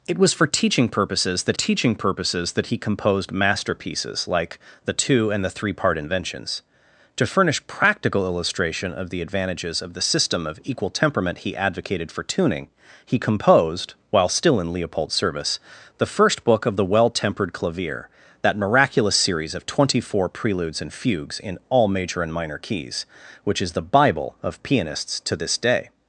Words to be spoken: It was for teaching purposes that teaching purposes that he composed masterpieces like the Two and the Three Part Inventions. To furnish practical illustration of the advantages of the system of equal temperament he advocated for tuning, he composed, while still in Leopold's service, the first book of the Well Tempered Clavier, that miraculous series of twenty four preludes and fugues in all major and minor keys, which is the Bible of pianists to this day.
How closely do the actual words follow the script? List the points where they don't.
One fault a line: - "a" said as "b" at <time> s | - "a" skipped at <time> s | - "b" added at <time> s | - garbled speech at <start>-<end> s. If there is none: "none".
none